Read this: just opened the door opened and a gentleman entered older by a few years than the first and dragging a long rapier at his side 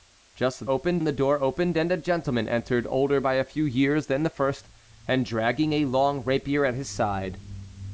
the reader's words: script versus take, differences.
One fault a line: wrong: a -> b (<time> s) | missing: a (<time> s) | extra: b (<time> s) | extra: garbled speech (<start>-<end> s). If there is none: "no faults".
no faults